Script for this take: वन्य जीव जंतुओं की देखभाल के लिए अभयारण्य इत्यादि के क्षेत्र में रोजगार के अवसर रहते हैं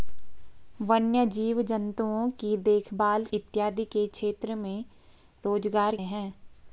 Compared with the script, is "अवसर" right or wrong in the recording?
wrong